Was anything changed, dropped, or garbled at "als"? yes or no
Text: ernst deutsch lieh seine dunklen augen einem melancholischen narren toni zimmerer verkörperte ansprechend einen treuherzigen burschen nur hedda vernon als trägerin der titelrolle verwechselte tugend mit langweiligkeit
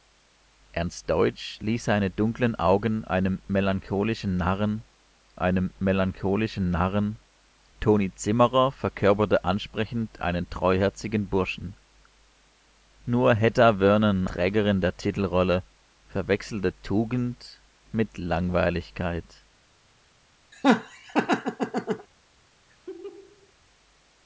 yes